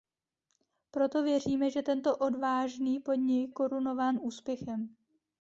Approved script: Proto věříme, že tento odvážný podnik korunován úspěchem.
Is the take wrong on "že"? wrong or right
right